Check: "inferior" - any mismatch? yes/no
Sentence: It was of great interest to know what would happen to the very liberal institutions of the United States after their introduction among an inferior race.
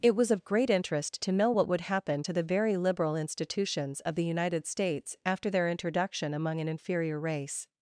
no